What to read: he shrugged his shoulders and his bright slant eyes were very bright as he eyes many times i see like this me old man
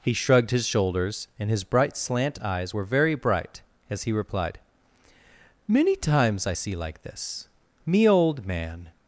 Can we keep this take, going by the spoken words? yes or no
no